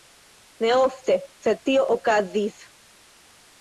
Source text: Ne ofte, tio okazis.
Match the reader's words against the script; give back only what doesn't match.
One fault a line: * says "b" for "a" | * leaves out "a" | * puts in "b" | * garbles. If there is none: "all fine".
* puts in "sed"